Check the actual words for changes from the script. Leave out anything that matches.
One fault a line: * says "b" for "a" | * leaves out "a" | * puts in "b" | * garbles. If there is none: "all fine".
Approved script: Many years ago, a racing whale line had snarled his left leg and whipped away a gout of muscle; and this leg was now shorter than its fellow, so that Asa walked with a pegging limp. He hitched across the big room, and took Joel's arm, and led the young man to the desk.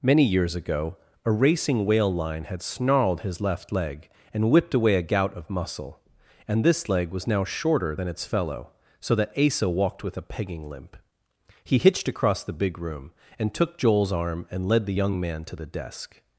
all fine